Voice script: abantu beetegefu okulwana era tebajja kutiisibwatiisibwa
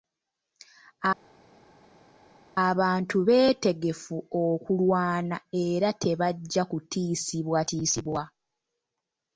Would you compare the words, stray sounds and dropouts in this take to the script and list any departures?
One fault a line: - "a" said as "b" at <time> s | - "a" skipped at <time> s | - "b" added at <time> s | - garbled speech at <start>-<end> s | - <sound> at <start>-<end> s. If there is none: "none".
none